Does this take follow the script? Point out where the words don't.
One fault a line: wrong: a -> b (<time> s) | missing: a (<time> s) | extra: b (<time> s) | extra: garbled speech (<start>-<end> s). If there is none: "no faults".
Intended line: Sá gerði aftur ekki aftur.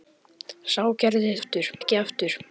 no faults